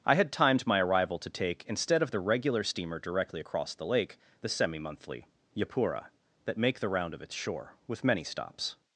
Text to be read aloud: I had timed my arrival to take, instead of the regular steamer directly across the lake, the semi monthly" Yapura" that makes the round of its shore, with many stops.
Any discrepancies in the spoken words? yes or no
yes